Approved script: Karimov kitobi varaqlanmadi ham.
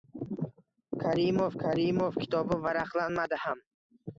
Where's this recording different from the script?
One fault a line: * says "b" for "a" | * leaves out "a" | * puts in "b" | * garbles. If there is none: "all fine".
* puts in "karimov"